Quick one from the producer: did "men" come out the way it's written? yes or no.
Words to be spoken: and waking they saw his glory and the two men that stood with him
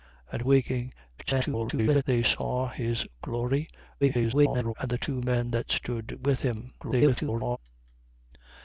yes